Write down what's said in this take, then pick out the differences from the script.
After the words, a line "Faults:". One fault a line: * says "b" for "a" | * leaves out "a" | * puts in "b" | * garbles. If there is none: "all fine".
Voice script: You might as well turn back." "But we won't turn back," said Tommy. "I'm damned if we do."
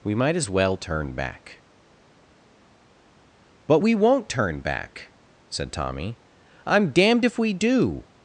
We might as well turn back." "But we won't turn back," said Tommy. "I'm damned if we do."
Faults:
* says "We" for "You"